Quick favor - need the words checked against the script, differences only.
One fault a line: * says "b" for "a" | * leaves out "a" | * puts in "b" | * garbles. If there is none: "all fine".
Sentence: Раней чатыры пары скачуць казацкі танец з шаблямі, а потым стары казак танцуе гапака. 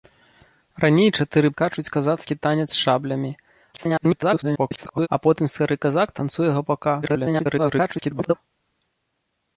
* leaves out "пары"
* garbles
* garbles